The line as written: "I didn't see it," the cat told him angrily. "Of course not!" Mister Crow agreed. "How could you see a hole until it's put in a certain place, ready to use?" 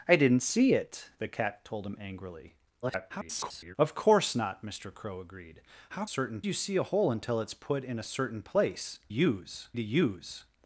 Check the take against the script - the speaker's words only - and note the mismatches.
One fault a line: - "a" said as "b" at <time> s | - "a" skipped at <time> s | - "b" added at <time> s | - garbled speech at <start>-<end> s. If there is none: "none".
- garbled speech at 2.8-3.8 s
- "could" said as "certain" at 6.1 s
- "ready" said as "use" at 9.1 s